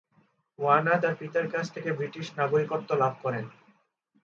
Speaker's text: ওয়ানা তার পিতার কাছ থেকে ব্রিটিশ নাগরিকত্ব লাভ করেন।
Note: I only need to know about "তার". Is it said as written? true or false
true